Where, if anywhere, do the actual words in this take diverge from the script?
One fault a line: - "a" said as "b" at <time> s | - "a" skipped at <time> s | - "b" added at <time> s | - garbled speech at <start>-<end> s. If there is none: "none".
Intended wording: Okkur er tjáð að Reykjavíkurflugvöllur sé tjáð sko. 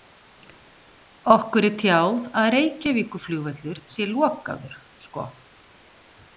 - "tjáð" said as "lokaður" at 4.1 s